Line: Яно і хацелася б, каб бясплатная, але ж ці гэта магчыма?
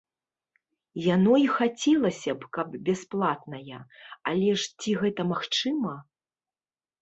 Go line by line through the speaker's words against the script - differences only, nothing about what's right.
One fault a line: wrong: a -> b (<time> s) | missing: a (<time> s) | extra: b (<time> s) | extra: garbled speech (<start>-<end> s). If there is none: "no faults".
no faults